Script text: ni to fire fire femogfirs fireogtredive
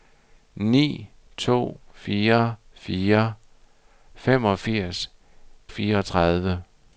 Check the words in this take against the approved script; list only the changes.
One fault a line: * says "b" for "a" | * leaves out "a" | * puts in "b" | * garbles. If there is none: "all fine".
all fine